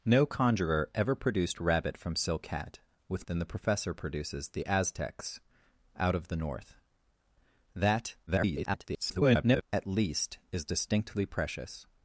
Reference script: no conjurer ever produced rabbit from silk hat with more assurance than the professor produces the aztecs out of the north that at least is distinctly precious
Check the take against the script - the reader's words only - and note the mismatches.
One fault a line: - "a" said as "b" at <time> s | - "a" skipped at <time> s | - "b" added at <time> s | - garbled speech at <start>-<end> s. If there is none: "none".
- "more assurance" skipped at 3.3 s
- garbled speech at 8.3-9.6 s